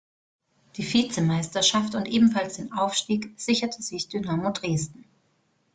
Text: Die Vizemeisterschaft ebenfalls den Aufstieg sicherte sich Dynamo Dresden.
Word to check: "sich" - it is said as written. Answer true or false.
true